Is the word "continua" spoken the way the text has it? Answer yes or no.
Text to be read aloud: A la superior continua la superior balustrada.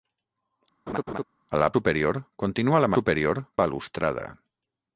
yes